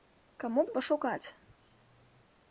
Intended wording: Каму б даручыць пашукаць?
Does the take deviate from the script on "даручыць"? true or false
true